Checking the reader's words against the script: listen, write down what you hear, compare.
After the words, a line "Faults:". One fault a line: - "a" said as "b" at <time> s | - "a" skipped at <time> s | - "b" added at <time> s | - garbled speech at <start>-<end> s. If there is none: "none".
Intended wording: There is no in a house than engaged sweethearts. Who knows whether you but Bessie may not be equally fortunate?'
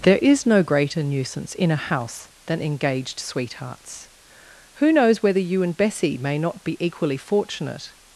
There is no greater nuisance in a house than engaged sweethearts. Who knows whether you and Bessie may not be equally fortunate?'
Faults:
- "greater nuisance" added at 0.6 s
- "but" said as "and" at 5.6 s